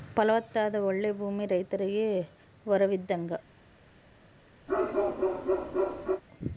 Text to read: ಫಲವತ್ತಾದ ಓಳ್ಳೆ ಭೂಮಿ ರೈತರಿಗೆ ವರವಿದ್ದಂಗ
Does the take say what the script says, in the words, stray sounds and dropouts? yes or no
no